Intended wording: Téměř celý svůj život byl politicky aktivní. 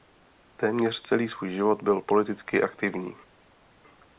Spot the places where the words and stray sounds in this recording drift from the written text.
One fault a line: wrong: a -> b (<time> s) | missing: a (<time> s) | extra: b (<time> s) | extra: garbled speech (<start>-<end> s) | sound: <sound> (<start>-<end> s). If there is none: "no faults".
no faults